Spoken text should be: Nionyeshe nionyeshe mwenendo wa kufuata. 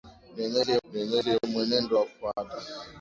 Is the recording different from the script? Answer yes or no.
no